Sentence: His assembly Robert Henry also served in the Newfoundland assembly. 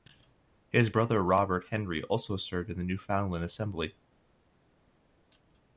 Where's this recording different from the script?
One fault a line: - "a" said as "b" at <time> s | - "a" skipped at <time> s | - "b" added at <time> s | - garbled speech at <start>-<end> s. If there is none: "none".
- "assembly" said as "brother" at 0.9 s